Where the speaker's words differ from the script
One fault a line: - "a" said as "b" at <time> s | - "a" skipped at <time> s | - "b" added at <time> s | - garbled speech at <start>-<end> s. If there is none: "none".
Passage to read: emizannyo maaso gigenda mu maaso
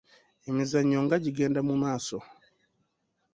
- "maaso" said as "nga" at 1.1 s